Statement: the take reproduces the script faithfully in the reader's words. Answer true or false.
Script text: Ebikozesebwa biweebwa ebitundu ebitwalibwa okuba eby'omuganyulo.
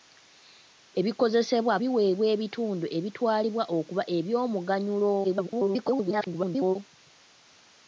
false